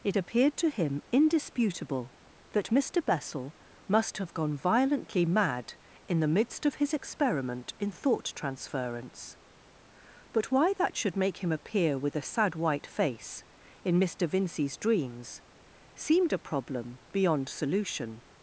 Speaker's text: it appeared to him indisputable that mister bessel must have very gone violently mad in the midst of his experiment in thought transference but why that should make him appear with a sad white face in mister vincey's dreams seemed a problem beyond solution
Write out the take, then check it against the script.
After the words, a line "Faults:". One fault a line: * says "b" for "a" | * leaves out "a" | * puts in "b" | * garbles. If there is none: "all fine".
it appeared to him indisputable that mister bessel must have gone violently mad in the midst of his experiment in thought transference but why that should make him appear with a sad white face in mister vincey's dreams seemed a problem beyond solution
Faults:
* leaves out "very"